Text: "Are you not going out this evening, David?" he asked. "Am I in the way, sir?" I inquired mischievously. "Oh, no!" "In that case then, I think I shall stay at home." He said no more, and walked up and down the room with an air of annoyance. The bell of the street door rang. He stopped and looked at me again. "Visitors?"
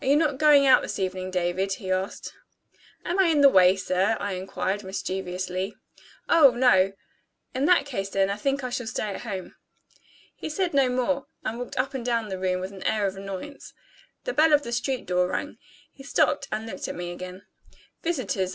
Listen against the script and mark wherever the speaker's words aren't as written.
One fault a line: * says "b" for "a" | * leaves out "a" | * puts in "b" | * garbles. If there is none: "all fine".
all fine